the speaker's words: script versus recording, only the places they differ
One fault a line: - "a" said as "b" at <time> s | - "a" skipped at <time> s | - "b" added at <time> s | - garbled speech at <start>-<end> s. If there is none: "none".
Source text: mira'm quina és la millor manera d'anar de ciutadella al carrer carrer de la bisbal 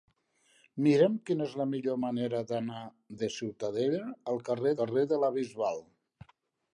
none